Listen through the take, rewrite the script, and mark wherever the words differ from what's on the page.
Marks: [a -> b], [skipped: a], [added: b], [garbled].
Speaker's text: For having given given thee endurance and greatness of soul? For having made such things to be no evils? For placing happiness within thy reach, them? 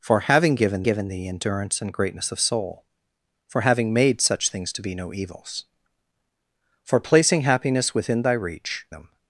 For having given given thee endurance and greatness of soul? For having made such things to be no evils? For placing happiness within thy reach, them?